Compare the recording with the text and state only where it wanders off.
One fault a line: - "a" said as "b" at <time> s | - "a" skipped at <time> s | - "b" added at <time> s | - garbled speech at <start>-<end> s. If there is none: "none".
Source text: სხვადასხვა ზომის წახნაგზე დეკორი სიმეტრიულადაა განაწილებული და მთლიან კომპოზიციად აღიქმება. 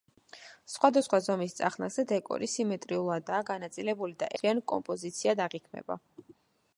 none